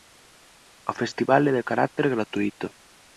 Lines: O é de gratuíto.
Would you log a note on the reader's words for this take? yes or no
yes